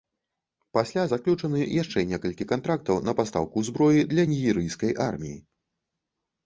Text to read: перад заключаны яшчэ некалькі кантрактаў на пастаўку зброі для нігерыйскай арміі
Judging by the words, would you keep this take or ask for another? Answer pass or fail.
fail